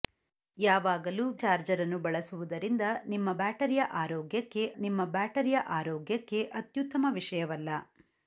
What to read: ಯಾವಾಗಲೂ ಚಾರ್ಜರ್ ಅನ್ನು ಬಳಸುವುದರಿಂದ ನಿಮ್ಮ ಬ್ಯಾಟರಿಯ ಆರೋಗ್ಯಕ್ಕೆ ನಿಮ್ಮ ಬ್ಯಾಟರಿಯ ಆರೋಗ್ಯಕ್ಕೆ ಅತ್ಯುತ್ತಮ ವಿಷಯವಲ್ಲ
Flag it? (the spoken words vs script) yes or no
no